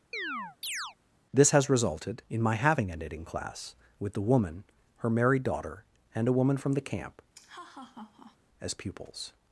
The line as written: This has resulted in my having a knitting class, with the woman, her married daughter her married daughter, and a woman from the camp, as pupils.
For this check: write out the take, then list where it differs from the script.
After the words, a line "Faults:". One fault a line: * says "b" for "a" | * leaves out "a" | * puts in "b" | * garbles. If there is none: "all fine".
This has resulted in my having a knitting class, with the woman, her married daughter, and a woman from the camp, as pupils.
Faults:
* leaves out "her married daughter"